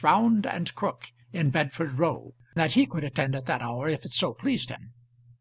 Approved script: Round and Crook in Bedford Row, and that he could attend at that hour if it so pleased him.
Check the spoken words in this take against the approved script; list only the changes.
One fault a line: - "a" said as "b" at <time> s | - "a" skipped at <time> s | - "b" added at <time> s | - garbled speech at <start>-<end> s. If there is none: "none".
- "and" skipped at 2.3 s